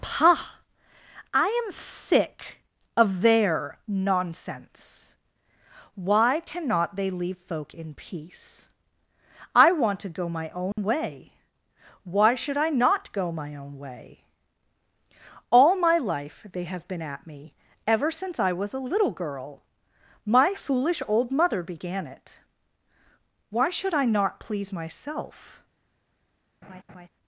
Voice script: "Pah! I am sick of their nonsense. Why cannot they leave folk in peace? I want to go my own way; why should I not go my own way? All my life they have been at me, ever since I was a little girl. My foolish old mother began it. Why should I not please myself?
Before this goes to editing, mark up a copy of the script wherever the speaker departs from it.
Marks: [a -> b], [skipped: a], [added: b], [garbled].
"Pah! I am sick of their nonsense. Why cannot they leave folk in peace? I want to go my own way; why should I not go my own way? All my life they have been at me, ever since I was a little girl. My foolish old mother began it. Why should I not please myself?